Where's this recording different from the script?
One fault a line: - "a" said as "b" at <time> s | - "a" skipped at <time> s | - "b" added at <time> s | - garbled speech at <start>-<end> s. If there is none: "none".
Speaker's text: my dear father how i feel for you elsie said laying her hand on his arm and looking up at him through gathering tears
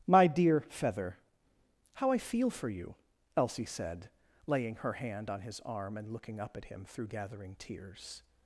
- "father" said as "feather" at 0.6 s